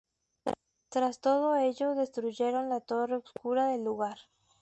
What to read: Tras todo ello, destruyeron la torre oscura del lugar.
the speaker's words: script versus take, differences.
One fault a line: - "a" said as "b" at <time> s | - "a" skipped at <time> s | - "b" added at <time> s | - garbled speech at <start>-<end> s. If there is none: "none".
none